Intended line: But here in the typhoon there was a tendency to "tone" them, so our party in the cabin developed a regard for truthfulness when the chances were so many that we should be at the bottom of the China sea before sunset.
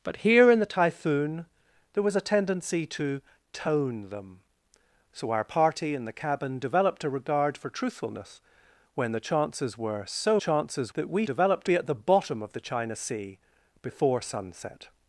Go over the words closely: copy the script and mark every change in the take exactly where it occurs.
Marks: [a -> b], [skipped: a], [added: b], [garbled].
But here in the typhoon there was a tendency to "tone" them, so our party in the cabin developed a regard for truthfulness when the chances were so [many -> chances] that we [should -> developed] be at the bottom of the China sea before sunset.